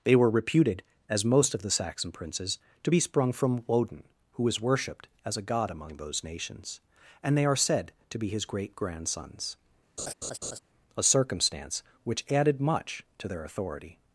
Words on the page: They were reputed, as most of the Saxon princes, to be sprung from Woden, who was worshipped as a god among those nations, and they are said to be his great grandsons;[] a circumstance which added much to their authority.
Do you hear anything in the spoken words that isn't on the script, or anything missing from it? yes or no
no